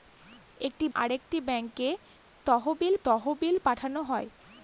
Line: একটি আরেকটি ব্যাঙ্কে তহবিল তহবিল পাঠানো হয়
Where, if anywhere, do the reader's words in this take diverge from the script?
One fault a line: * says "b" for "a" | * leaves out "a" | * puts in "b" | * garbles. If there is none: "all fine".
all fine